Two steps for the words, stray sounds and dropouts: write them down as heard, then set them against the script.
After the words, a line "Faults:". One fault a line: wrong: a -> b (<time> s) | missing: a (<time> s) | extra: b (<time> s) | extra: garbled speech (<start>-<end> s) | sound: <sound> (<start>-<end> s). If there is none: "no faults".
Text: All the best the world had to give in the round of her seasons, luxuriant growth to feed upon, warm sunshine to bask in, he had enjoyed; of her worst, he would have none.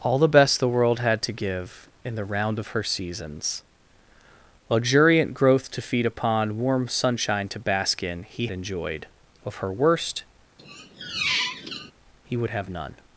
All the best the world had to give in the round of her seasons, luxuriant growth to feed upon, warm sunshine to bask in, he enjoyed; of her worst, he would have none.
Faults:
missing: had (8.5 s)
sound: squeak (10.6-11.9 s)